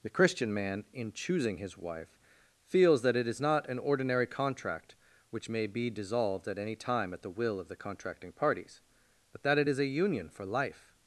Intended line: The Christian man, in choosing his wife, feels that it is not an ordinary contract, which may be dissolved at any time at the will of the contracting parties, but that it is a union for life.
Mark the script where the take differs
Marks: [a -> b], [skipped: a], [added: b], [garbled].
The Christian man, in choosing his wife, feels that it is not an ordinary contract, which may be dissolved at any time at the will of the contracting parties, but that it is a union for life.